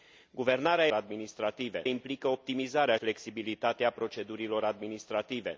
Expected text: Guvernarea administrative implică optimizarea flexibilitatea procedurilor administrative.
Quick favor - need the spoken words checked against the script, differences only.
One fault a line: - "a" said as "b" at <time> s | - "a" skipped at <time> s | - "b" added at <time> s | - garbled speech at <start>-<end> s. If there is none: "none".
none